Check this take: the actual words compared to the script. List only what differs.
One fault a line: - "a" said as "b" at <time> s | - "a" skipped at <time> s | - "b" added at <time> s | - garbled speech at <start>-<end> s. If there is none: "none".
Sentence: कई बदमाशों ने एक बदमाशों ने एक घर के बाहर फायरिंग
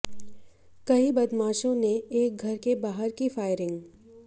- "बदमाशों ने एक" skipped at 2.4 s
- "की" added at 3.1 s